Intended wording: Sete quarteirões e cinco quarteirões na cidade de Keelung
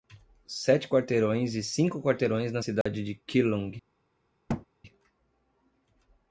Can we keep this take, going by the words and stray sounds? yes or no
no